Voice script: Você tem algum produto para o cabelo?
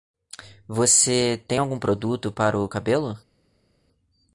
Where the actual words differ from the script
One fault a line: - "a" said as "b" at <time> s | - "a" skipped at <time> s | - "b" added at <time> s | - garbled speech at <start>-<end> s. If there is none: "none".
none